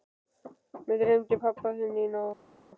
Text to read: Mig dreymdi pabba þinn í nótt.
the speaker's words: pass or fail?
pass